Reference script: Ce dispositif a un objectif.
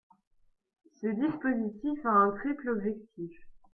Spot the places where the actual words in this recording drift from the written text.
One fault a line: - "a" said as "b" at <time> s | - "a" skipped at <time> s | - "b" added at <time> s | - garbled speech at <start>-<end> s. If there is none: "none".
- "triple" added at 2.3 s